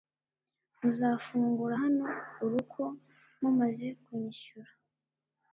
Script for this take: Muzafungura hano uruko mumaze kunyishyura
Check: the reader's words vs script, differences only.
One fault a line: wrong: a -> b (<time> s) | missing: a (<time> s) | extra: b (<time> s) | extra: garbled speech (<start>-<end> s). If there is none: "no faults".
no faults